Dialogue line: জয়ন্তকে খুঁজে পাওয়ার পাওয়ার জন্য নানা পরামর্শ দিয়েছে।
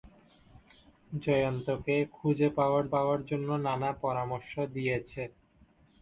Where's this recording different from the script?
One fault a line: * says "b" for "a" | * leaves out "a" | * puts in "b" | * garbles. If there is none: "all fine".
all fine